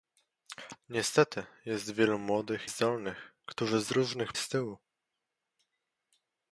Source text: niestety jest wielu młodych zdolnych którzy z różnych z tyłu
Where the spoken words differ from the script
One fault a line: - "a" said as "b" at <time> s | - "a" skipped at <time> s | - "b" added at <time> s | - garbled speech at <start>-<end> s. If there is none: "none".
none